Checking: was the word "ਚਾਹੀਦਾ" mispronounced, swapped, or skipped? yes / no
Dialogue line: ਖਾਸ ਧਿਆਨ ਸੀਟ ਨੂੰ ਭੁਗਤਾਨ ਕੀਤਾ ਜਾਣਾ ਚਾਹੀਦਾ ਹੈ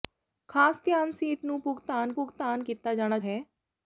yes